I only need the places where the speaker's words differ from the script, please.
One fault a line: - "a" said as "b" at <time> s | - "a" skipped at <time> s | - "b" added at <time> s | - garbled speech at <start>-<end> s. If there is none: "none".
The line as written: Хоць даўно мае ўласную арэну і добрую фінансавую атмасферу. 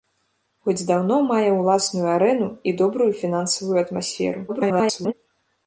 - garbled speech at 4.5-5.1 s